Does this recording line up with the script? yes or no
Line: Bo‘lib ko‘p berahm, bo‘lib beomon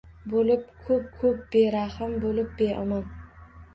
no